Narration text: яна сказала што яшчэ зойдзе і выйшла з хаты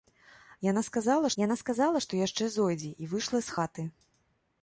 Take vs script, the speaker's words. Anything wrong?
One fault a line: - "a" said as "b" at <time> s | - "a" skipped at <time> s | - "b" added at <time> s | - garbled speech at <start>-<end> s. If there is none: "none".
- "яна сказала" added at 1.4 s